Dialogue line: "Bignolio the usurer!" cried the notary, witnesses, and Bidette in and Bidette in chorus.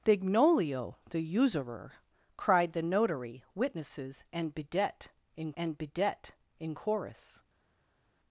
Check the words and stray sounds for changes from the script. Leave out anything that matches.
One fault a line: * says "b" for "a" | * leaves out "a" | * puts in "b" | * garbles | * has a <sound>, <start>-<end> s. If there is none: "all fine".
all fine